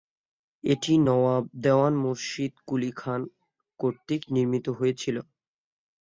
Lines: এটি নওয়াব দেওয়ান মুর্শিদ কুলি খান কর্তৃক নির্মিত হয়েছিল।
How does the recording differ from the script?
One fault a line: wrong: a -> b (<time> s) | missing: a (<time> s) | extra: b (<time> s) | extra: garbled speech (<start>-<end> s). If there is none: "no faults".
no faults